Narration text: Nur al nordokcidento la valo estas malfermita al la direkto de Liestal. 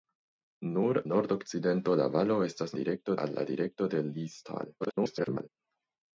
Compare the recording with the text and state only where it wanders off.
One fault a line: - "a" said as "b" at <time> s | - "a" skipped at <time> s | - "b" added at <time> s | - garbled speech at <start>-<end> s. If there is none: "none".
- "al" skipped at 1.0 s
- "malfermita" said as "direkto" at 2.8 s
- garbled speech at 4.8-5.5 s